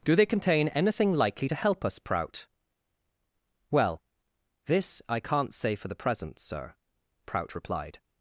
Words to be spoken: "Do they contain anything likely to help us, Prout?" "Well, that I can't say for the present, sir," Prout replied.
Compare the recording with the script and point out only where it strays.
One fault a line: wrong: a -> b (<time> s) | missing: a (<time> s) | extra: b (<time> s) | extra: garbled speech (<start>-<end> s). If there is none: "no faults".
wrong: that -> this (4.7 s)